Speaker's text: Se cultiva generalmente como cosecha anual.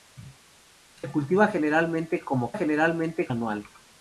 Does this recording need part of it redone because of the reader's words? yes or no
yes